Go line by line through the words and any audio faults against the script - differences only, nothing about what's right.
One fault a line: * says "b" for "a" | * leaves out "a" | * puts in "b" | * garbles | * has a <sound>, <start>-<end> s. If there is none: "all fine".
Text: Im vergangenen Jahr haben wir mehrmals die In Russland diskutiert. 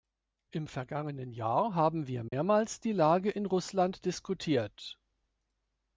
* has a dropout, 2.3-2.3 s
* puts in "Lage"